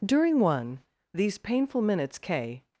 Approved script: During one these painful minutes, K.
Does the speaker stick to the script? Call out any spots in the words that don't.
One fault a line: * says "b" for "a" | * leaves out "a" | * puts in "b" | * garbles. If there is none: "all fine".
all fine